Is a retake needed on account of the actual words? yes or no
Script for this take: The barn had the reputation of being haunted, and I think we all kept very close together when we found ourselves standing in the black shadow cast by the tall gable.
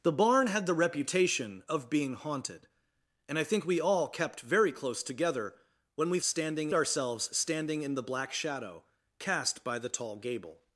yes